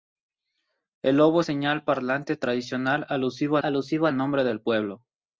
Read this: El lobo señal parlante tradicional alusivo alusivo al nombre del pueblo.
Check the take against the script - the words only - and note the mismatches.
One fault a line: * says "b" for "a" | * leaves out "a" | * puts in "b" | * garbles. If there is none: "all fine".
all fine